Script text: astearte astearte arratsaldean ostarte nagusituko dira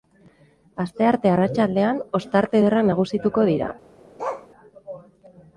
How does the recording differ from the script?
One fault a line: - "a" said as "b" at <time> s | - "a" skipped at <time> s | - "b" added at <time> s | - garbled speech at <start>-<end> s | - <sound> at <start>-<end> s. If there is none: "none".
- "astearte" skipped at 1.3 s
- "ederrak" added at 2.6 s
- bark at 4.2-4.5 s